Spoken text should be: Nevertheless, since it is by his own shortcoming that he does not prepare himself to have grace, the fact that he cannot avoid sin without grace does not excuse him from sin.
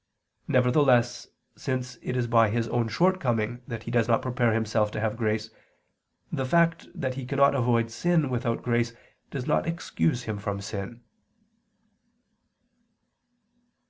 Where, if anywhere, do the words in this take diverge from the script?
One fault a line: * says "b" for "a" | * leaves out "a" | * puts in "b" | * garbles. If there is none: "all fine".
all fine